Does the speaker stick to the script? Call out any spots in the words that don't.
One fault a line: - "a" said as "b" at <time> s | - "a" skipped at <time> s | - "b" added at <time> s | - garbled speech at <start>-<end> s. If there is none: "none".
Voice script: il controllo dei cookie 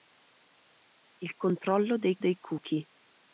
- "dei" added at 2.2 s